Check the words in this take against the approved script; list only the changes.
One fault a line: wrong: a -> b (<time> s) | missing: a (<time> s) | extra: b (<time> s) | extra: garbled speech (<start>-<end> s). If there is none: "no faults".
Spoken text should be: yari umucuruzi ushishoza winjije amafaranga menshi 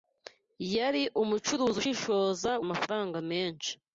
missing: winjije (2.5 s)